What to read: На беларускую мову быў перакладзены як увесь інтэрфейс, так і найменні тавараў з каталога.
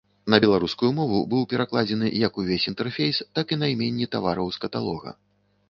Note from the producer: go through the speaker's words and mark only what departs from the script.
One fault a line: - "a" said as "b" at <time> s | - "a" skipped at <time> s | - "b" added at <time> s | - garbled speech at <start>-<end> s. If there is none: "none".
none